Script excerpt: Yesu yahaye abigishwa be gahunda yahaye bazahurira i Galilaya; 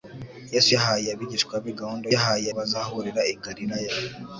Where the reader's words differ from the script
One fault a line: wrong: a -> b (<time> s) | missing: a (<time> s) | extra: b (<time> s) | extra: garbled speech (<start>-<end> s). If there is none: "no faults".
no faults